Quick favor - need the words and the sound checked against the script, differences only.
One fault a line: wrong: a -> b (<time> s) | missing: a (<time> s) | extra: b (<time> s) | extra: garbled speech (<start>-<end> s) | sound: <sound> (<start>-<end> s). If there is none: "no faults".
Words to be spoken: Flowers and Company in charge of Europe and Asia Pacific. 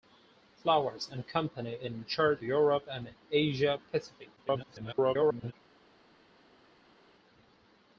missing: of (2.4 s)
extra: garbled speech (4.4-5.5 s)